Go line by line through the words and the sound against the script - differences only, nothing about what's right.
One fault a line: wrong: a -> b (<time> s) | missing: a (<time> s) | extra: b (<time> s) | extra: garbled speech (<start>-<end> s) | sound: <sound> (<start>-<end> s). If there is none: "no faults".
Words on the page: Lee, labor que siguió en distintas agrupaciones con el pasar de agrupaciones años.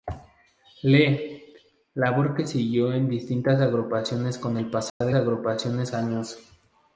sound: dropout (4.9-5.0 s)